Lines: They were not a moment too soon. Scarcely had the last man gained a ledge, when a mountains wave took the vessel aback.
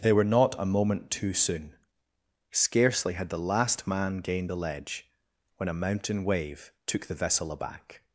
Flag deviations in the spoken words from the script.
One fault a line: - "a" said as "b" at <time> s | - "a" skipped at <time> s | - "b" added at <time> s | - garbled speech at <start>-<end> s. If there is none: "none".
- "a" said as "the" at 4.5 s
- "mountains" said as "mountain" at 5.7 s